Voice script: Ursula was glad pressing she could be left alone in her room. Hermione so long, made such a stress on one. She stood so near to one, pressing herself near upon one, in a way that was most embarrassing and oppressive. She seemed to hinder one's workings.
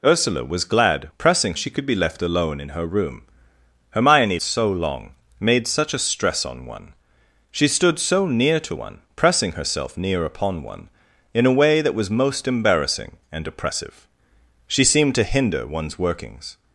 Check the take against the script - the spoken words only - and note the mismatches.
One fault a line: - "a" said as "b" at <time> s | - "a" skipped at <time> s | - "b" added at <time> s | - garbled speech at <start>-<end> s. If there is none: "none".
none